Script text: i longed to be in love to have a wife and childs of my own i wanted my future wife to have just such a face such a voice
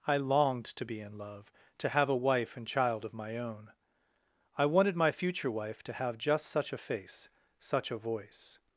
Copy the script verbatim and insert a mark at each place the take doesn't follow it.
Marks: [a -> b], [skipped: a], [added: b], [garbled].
i longed to be in love to have a wife and [childs -> child] of my own i wanted my future wife to have just such a face such a voice